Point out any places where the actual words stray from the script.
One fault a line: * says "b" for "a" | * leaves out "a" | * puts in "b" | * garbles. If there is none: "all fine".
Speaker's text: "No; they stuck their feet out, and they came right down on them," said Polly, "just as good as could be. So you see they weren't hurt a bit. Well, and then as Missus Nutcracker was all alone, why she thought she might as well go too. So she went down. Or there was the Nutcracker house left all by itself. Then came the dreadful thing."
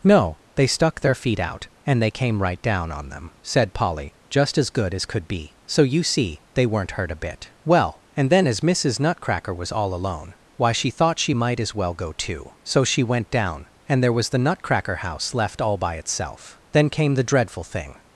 * says "And" for "Or"